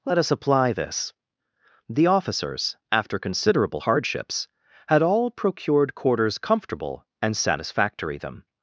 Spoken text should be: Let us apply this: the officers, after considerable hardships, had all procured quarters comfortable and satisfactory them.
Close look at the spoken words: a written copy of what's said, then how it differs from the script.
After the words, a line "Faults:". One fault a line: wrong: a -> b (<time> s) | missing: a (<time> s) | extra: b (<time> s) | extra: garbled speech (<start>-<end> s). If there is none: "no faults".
Let us apply this: the officers, after considerable hardships, had all procured quarters comfortable and satisfactory them.
Faults:
no faults